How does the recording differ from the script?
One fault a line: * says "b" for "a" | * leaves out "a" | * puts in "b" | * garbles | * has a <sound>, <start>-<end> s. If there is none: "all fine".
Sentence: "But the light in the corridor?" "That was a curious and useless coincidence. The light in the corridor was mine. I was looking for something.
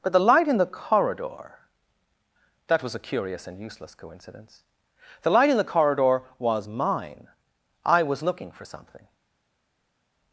all fine